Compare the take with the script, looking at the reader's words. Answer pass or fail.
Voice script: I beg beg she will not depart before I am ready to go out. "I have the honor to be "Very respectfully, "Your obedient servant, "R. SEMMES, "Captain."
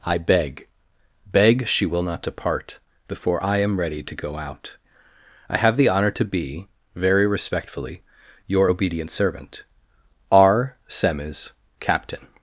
pass